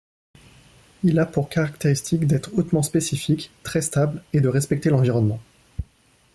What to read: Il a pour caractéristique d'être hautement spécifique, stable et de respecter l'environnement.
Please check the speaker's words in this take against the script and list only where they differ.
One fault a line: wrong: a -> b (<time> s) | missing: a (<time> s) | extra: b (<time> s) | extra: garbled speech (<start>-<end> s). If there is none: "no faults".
extra: très (3.6 s)